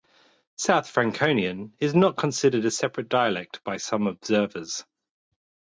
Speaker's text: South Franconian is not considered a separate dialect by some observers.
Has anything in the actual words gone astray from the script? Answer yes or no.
no